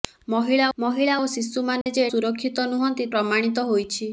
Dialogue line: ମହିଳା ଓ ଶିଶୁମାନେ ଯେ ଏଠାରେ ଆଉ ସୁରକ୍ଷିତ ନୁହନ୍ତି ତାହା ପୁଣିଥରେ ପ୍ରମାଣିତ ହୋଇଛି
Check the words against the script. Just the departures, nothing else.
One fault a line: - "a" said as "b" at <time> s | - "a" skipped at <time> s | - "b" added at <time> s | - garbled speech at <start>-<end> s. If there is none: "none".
- "ମହିଳା" added at 0.8 s
- "ଏଠାରେ ଆଉ" skipped at 2.1 s
- "ତାହା ପୁଣିଥରେ" skipped at 3.1 s